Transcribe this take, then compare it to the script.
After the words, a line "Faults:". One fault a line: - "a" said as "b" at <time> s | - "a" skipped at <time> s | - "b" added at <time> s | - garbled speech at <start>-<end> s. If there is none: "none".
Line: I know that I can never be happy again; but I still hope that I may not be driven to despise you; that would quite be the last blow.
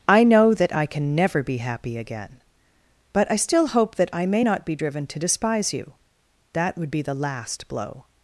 I know that I can never be happy again; but I still hope that I may not be driven to despise you; that would be the last blow.
Faults:
- "quite" skipped at 6.9 s